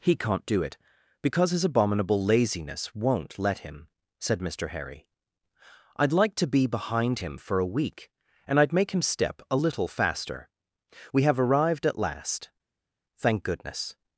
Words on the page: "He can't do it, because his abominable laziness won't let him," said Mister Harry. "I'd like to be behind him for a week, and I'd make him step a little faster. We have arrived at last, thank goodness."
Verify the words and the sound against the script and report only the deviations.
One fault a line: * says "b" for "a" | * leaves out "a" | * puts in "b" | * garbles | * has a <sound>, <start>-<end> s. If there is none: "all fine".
all fine